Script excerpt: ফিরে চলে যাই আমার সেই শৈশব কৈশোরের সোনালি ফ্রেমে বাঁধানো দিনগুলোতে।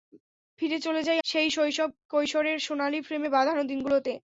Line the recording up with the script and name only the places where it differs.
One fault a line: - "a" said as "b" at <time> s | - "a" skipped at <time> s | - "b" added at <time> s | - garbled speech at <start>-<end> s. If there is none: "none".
- "আমার" skipped at 1.2 s